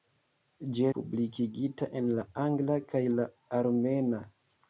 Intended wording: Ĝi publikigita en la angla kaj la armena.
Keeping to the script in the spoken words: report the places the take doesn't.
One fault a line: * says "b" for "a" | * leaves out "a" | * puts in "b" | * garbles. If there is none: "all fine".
all fine